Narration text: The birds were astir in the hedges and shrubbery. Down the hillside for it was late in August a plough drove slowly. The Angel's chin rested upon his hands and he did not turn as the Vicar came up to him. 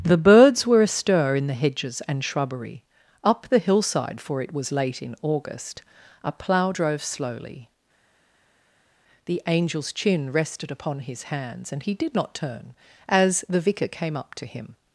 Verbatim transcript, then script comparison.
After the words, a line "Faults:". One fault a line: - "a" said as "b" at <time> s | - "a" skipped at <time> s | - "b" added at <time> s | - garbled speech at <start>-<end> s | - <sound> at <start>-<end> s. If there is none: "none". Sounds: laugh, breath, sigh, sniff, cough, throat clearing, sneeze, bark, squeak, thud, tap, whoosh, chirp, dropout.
The birds were astir in the hedges and shrubbery. Up the hillside for it was late in August a plough drove slowly. The Angel's chin rested upon his hands and he did not turn as the Vicar came up to him.
Faults:
- "Down" said as "Up" at 3.2 s